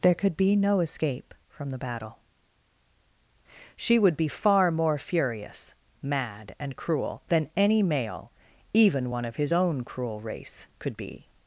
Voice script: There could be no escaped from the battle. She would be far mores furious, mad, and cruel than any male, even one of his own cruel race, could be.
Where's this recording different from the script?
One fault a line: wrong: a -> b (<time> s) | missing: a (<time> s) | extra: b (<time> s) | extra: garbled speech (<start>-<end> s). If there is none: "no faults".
wrong: escaped -> escape (0.8 s)
wrong: mores -> more (4.7 s)